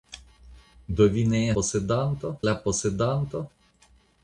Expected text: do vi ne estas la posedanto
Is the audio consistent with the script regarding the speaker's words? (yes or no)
no